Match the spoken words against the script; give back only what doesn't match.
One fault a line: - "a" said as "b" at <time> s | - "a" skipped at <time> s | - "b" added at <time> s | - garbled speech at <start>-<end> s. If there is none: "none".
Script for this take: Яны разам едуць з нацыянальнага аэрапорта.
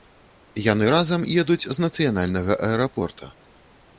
none